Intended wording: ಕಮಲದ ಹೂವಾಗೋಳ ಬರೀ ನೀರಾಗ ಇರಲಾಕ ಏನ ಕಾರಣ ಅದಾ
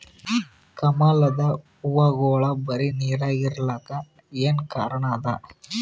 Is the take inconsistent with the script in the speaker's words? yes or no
no